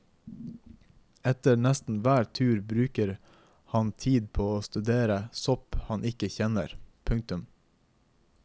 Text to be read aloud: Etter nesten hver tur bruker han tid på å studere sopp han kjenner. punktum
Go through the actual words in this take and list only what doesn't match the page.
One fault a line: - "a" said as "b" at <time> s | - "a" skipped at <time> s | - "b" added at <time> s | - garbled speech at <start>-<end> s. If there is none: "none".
- "ikke" added at 6.1 s